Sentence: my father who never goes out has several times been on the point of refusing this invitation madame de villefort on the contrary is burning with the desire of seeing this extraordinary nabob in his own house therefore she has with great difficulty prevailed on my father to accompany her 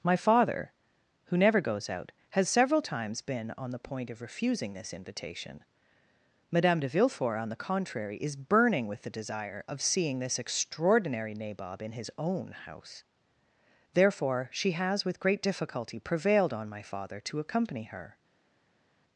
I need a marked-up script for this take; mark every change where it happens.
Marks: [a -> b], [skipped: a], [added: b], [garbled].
my father who never goes out has several times been on the point of refusing this invitation madame de villefort on the contrary is burning with the desire of seeing this extraordinary nabob in his own house therefore she has with great difficulty prevailed on my father to accompany her